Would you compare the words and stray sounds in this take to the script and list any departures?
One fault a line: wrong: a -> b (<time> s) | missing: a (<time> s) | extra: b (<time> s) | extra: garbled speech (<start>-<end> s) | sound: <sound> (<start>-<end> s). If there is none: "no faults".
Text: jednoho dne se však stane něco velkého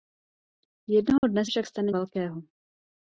sound: dropout (1.2-1.2 s)
missing: se (1.4 s)
missing: něco (1.9 s)